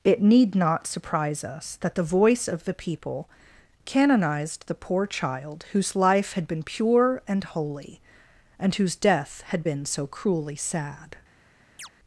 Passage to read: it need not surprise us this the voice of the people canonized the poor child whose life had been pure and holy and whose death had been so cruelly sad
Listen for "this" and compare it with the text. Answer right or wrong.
wrong